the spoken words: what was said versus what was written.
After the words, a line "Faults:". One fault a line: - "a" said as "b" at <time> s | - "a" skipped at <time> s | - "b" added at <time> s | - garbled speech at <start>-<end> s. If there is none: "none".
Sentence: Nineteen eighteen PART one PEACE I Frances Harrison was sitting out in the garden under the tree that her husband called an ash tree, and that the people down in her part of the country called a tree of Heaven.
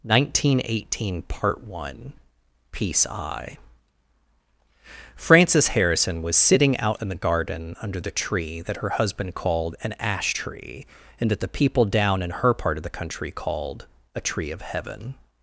Nineteen eighteen PART one PEACE I Frances Harrison was sitting out in the garden under the tree that her husband called an ash tree, and that the people down in her part of the country called a tree of Heaven.
Faults:
none